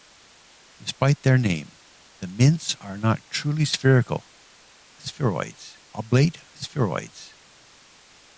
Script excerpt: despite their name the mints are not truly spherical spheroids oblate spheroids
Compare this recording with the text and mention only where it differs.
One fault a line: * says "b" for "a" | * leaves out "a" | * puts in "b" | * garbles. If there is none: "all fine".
all fine